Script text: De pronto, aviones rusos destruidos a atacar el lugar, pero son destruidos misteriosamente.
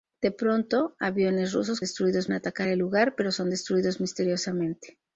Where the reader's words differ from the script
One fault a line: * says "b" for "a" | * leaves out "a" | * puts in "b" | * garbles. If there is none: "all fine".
all fine